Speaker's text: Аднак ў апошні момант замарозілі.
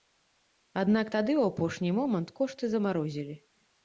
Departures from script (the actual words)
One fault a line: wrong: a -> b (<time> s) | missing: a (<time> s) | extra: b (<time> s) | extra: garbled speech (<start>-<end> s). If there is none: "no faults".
extra: тады (1.1 s)
extra: кошты (2.4 s)